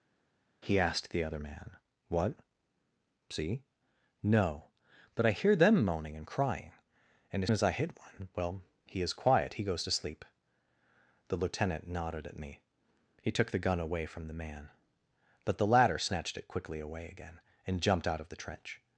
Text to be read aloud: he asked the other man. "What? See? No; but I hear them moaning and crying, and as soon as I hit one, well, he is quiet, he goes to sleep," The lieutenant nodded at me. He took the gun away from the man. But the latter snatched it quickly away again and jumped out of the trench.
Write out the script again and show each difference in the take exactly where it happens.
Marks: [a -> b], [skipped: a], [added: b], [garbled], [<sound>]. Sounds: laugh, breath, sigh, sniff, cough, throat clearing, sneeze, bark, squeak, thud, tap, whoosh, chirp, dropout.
he asked the other man. "What? See? No; but I hear them moaning and crying, and as [skipped: soon] as I hit one, well, he is quiet, he goes to sleep," The lieutenant nodded at me. He took the gun away from the man. But the latter snatched it quickly away again and jumped out of the trench.